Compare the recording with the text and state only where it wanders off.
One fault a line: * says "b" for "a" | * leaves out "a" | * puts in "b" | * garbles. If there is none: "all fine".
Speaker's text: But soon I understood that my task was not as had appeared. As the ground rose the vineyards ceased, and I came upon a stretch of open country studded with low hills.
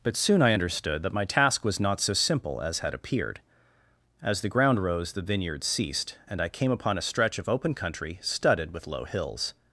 * puts in "so simple"